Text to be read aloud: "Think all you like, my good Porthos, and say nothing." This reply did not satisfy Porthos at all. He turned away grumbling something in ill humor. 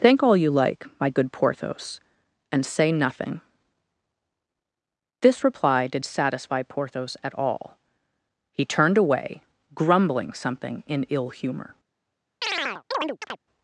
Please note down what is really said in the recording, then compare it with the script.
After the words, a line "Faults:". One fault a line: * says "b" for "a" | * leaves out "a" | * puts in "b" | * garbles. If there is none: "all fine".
"Think all you like, my good Porthos, and say nothing." This reply did satisfy Porthos at all. He turned away grumbling something in ill humor.
Faults:
* leaves out "not"